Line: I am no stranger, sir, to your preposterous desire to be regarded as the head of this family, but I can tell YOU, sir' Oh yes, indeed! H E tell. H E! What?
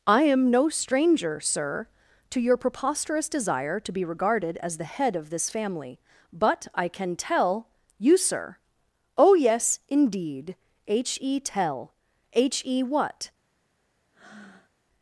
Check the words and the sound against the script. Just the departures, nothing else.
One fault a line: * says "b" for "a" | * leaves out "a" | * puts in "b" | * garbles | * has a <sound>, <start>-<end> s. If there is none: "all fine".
* has a breath, 14.1-14.7 s